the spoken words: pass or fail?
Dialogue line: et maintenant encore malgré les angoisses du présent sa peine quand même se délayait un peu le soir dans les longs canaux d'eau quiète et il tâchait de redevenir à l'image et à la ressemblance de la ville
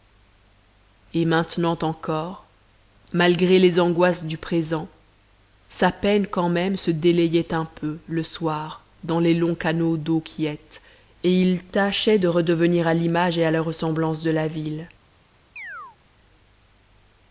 pass